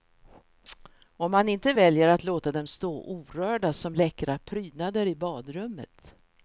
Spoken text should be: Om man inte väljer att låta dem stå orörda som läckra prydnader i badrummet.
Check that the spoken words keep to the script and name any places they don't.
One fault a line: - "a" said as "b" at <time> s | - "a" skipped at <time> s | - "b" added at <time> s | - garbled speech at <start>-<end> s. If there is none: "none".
none